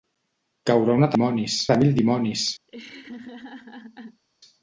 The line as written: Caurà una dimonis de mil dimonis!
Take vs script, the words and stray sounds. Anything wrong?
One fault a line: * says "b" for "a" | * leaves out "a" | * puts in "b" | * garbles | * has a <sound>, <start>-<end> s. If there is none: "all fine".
* has a laugh, 2.7-4.2 s